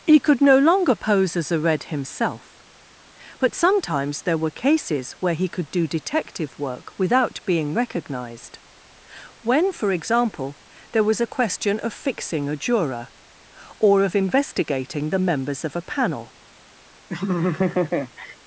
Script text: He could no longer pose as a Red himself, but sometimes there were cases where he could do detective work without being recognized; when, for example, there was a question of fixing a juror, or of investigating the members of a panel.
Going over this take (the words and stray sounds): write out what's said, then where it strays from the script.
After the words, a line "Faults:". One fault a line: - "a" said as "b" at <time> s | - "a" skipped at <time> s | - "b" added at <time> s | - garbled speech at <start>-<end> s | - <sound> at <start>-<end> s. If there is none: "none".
He could no longer pose as a Red himself, but sometimes there were cases where he could do detective work without being recognized; when, for example, there was a question of fixing a juror, or of investigating the members of a panel.
Faults:
- laugh at 17.1-18.4 s